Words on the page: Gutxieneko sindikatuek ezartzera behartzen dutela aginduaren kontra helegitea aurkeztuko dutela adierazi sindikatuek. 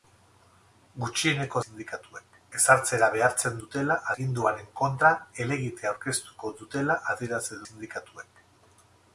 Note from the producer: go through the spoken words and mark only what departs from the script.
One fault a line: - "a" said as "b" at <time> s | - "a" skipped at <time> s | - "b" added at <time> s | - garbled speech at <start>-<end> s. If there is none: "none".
none